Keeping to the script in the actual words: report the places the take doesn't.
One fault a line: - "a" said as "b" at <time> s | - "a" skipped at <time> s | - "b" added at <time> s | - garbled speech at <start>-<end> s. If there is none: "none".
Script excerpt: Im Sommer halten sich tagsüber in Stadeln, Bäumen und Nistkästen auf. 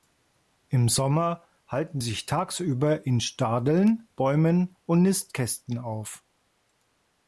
none